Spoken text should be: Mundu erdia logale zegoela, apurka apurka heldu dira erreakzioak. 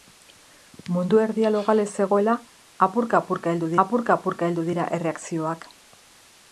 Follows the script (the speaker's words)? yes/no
no